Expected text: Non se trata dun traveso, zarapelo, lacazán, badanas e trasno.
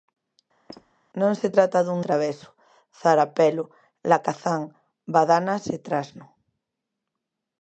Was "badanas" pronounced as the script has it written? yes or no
yes